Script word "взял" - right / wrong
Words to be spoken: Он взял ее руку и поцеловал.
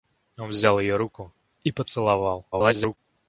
right